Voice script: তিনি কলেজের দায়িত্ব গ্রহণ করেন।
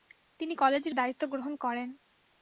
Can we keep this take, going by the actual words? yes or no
yes